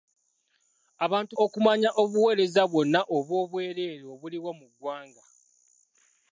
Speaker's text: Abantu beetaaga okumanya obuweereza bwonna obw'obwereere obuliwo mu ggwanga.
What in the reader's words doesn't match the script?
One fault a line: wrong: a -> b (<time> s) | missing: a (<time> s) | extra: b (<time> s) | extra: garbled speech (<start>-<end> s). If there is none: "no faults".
missing: beetaaga (1.3 s)